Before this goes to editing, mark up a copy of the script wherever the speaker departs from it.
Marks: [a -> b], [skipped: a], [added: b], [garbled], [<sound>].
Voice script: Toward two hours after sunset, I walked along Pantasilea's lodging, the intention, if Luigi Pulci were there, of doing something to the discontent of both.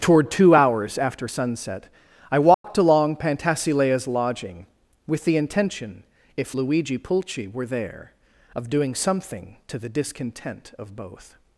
Toward two hours after sunset, I walked [dropout] along Pantasilea's lodging, [added: with] the intention, if Luigi Pulci were there, of doing something to the discontent of both.